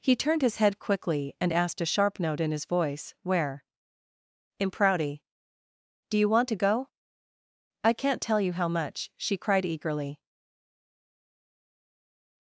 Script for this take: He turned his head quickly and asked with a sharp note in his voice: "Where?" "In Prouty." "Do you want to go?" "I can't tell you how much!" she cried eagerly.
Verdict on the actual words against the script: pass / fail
fail